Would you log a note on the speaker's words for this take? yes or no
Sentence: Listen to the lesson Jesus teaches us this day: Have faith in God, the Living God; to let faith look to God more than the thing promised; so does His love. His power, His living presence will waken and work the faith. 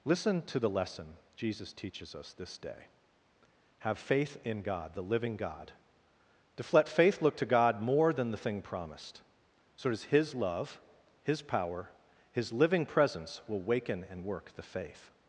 no